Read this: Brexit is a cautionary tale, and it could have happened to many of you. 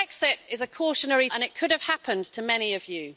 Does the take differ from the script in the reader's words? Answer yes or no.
yes